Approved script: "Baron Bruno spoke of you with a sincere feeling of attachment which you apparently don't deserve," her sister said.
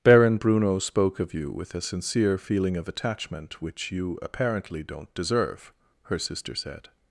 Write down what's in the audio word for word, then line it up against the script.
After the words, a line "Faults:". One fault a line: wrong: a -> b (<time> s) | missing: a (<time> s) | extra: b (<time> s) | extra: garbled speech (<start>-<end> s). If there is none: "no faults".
"Baron Bruno spoke of you with a sincere feeling of attachment which you apparently don't deserve," her sister said.
Faults:
no faults